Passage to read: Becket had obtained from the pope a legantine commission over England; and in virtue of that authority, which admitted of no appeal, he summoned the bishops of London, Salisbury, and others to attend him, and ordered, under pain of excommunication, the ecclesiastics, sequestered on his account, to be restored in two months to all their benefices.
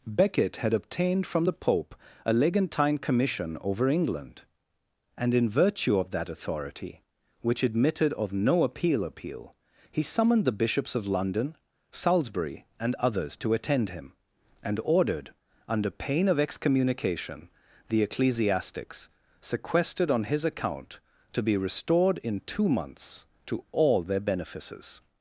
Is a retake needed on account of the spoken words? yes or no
yes